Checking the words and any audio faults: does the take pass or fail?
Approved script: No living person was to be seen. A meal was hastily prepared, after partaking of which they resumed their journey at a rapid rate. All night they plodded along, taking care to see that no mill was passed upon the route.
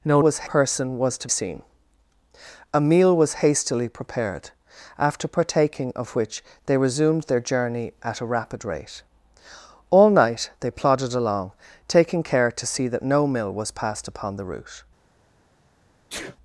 fail